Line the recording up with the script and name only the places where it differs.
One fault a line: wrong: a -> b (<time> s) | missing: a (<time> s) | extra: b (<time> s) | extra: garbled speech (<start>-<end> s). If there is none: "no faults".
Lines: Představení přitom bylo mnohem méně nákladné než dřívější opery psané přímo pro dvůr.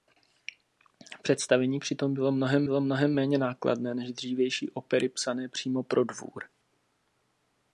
extra: bylo mnohem (2.6 s)